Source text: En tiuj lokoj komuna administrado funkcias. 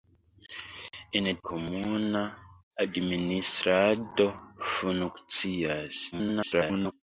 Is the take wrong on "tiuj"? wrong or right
wrong